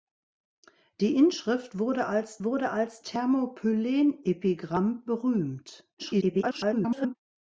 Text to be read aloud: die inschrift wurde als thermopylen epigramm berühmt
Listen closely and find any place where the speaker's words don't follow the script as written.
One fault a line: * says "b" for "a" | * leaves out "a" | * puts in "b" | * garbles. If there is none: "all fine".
* puts in "wurde als"
* garbles